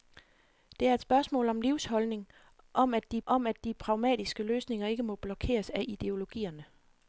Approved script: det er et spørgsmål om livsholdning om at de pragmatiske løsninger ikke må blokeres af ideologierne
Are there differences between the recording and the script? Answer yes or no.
yes